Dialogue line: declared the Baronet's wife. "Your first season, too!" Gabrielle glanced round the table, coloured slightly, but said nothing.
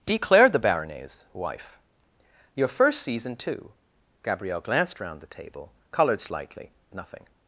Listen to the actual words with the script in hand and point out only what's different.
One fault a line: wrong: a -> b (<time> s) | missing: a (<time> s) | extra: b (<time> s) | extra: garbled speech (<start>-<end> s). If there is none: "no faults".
missing: but said (6.7 s)